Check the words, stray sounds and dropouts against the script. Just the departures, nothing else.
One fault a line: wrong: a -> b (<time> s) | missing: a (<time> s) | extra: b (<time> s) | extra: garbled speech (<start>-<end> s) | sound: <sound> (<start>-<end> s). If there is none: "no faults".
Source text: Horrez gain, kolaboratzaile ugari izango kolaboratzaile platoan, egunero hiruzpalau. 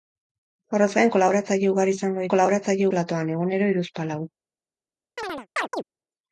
sound: chirp (5.2-5.8 s)